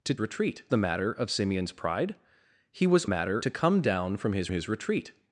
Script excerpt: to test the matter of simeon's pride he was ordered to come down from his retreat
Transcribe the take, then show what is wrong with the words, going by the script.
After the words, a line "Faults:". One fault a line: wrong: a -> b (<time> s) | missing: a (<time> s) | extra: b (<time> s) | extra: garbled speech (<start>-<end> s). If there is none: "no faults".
to retreat the matter of simeon's pride he was matter to come down from his his retreat
Faults:
wrong: test -> retreat (0.2 s)
wrong: ordered -> matter (3.0 s)
extra: his (4.5 s)